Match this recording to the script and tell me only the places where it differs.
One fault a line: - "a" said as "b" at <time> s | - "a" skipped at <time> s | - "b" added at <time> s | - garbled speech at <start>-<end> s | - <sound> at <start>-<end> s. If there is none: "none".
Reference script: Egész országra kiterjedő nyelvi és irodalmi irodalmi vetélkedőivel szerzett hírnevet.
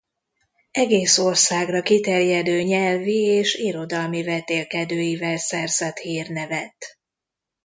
- "irodalmi" skipped at 4.2 s